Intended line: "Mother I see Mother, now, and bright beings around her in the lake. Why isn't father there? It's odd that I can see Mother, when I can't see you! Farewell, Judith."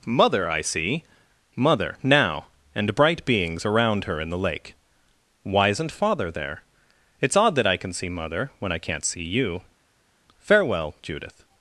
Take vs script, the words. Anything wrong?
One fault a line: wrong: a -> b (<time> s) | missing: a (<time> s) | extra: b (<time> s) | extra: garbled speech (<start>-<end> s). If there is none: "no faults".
no faults